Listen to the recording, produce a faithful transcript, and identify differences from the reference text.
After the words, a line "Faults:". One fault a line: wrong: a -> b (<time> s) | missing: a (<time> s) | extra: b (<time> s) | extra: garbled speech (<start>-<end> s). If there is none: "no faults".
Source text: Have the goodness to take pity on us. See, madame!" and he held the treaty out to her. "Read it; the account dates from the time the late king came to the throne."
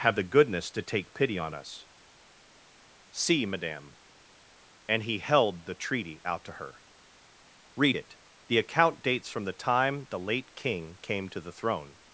Have the goodness to take pity on us. See, madame!" and he held the treaty out to her. "Read it; the account dates from the time the late king came to the throne."
Faults:
no faults